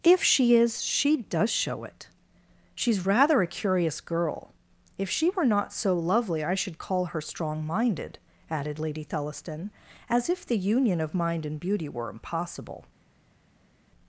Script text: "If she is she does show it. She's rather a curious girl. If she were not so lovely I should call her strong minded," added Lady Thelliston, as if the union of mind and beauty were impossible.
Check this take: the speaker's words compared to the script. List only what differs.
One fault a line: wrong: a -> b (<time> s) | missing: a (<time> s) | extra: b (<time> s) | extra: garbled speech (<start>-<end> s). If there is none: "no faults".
no faults